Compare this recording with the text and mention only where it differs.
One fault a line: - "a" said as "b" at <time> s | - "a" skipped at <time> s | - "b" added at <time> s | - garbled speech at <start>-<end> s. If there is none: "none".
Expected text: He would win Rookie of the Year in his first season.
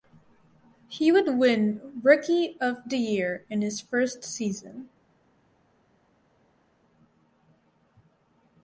none